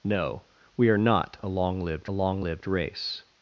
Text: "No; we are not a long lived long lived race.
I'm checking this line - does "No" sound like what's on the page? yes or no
yes